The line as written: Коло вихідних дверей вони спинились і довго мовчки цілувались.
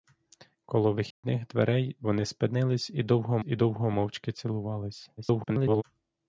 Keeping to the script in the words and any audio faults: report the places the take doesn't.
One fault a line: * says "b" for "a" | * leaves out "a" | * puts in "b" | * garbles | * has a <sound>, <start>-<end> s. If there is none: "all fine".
* has a dropout, 1.1-1.2 s
* puts in "і довго"
* garbles